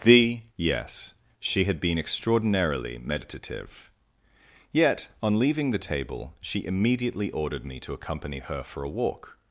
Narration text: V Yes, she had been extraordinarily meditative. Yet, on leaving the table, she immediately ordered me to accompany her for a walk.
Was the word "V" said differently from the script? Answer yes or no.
yes